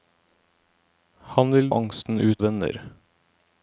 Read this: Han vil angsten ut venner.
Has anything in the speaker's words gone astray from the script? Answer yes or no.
no